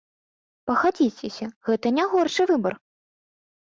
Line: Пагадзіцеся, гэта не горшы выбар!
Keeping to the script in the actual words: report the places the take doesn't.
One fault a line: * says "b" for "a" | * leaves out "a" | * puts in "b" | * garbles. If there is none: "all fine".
all fine